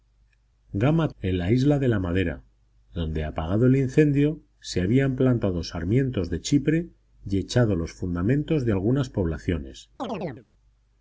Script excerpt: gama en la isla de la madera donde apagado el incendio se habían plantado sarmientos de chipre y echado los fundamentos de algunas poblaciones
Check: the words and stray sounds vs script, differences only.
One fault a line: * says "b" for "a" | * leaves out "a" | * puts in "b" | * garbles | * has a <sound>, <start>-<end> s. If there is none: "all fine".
* has a chirp, 10.0-10.5 s